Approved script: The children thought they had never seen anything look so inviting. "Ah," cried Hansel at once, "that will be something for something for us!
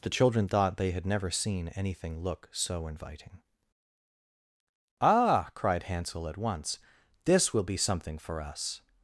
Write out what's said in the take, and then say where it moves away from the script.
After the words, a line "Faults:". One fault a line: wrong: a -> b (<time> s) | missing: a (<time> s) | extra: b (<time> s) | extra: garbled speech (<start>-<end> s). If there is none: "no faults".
The children thought they had never seen anything look so inviting. "Ah," cried Hansel at once, "this will be something for us!
Faults:
wrong: that -> this (7.2 s)
missing: something for (8.4 s)